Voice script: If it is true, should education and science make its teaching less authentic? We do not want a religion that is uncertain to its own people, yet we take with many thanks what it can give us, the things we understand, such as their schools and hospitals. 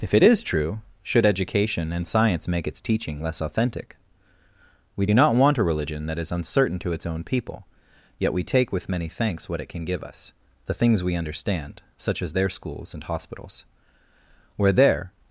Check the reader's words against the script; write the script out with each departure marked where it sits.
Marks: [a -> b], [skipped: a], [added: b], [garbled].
If it is true, should education and science make its teaching less authentic? We do not want a religion that is uncertain to its own people, yet we take with many thanks what it can give us, the things we understand, such as their schools and hospitals. [added: Where there]